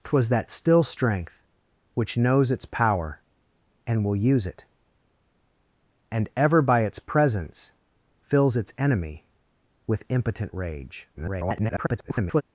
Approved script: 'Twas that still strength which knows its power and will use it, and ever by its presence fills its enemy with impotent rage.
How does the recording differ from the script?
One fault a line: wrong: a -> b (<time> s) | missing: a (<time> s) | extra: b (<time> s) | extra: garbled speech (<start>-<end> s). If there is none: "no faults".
extra: garbled speech (11.1-12.4 s)